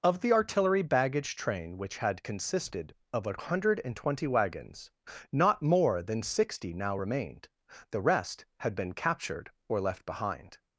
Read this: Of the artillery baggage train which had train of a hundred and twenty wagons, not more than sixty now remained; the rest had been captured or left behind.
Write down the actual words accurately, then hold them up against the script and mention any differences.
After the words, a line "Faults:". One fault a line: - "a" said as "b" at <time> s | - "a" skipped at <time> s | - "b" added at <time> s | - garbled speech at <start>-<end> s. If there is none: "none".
Of the artillery baggage train which had consisted of a hundred and twenty wagons, not more than sixty now remained; the rest had been captured or left behind.
Faults:
- "train" said as "consisted" at 2.2 s